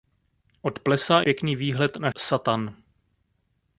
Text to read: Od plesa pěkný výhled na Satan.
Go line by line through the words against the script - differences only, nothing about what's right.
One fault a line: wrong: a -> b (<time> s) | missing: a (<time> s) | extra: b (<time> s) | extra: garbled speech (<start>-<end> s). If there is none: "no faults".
no faults